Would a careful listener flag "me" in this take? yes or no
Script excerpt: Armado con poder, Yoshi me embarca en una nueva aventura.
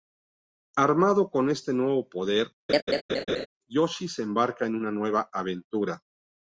yes